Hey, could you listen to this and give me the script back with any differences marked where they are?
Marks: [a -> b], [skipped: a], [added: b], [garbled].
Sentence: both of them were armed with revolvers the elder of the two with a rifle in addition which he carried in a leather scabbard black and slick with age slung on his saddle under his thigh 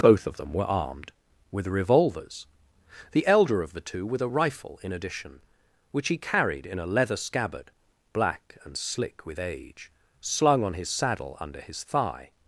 both of them were armed with revolvers the elder of the two with a rifle in addition which he carried in a leather scabbard black and slick with age slung on his saddle under his thigh